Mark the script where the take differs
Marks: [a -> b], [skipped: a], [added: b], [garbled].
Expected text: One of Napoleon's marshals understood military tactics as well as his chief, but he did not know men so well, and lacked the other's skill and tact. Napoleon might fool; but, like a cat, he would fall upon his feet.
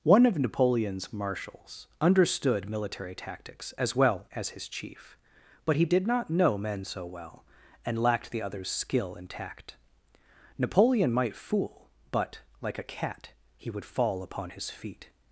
One of Napoleon's marshals understood military tactics as well as his chief, but he did not know men so well, and lacked the other's skill and tact. Napoleon might fool; but, like a cat, he would fall upon his feet.